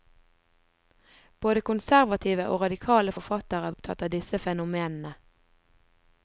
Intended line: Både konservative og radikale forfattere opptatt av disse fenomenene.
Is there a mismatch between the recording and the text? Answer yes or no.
no